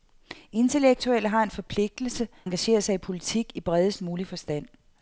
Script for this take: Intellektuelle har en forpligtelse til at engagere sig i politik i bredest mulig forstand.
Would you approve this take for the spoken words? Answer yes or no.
no